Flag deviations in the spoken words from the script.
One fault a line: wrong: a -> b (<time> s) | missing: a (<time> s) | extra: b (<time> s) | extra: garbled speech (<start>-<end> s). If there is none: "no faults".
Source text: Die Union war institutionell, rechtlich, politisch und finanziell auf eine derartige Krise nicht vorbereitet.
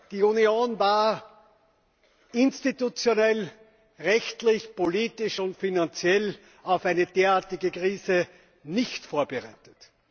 no faults